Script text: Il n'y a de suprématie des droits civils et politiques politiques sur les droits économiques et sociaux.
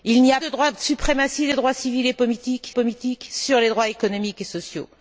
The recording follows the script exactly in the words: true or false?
true